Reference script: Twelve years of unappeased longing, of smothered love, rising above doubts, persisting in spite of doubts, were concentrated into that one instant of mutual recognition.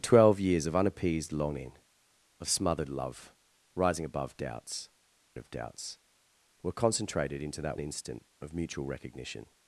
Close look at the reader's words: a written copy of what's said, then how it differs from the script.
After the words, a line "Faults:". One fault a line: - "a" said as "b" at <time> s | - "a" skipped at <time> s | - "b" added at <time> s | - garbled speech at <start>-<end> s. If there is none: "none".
Twelve years of unappeased longing, of smothered love, rising above doubts, of doubts, were concentrated into that instant of mutual recognition.
Faults:
- "persisting in spite" skipped at 4.9 s
- "one" skipped at 7.8 s